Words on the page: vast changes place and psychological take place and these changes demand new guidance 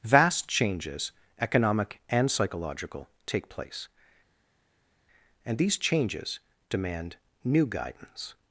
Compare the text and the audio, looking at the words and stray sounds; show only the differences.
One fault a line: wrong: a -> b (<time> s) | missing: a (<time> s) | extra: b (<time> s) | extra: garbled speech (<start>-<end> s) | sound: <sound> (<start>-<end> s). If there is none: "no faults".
wrong: place -> economic (1.4 s)